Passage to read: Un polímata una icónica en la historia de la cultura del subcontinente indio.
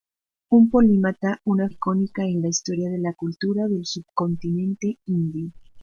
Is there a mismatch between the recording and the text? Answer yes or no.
no